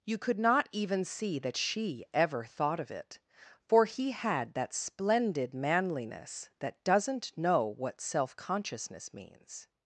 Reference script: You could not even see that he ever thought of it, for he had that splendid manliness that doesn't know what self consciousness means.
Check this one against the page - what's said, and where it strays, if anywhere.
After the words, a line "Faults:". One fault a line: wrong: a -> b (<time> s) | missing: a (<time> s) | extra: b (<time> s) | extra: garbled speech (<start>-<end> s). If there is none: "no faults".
You could not even see that she ever thought of it, for he had that splendid manliness that doesn't know what self consciousness means.
Faults:
wrong: he -> she (1.6 s)